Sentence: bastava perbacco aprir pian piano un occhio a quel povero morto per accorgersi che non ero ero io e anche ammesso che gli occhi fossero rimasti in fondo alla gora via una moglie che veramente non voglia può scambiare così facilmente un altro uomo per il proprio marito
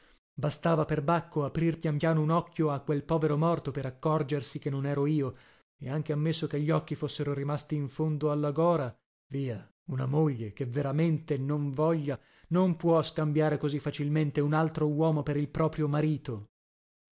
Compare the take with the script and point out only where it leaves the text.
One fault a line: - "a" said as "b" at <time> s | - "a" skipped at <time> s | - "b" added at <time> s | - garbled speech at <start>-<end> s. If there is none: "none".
- "ero" skipped at 5.1 s
- "non" added at 12.5 s